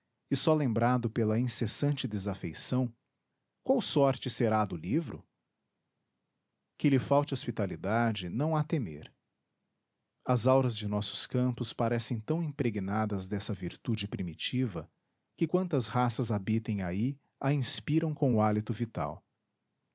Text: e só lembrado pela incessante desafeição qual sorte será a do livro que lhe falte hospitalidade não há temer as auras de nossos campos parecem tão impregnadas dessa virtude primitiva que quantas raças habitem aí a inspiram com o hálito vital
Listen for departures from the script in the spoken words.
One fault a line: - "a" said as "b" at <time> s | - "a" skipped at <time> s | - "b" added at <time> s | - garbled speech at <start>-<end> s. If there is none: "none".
none